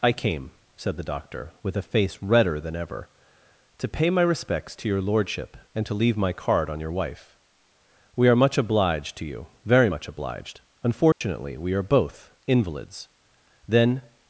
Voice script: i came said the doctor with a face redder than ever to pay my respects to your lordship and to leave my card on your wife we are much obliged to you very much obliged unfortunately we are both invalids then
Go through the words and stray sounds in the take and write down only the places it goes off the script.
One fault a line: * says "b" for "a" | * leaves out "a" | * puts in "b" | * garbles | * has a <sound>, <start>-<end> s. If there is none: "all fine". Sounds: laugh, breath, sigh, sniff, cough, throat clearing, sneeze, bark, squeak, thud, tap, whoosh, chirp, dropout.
* has a dropout, 11.1-11.2 s